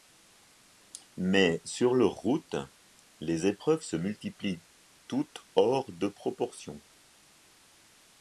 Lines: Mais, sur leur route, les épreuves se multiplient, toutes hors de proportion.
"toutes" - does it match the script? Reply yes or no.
yes